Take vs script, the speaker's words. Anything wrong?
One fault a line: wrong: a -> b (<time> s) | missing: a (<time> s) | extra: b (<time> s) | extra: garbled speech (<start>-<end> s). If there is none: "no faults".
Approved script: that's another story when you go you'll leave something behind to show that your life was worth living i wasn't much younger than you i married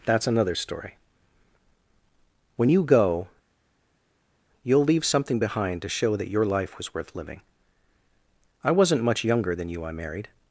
no faults